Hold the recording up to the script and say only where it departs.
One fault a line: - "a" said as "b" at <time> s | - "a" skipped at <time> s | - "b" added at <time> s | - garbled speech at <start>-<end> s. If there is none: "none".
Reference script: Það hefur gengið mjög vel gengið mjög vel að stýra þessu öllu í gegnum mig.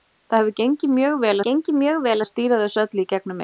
none